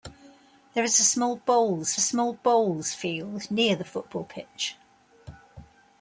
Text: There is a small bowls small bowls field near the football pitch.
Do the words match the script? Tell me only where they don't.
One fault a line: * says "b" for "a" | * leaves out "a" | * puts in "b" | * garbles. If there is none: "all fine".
all fine